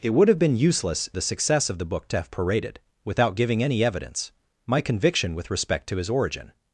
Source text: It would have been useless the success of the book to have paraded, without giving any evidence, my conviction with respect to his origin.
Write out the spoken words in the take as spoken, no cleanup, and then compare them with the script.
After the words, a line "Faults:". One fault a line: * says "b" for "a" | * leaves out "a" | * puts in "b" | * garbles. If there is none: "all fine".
It would have been useless the success of the book to have paraded, without giving any evidence, my conviction with respect to his origin.
Faults:
all fine